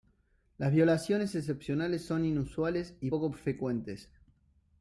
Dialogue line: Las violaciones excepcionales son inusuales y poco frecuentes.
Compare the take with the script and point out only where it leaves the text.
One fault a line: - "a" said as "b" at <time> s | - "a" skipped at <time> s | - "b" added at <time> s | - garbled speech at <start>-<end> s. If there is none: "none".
none